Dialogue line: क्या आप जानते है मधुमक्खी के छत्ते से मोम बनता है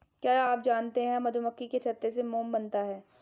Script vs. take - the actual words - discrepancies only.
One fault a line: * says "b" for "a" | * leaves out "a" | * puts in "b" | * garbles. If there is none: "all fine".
all fine